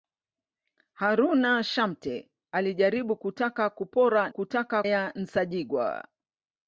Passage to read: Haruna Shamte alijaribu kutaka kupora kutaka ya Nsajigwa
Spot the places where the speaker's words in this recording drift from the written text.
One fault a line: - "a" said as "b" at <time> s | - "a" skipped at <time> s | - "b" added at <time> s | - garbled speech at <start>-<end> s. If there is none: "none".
none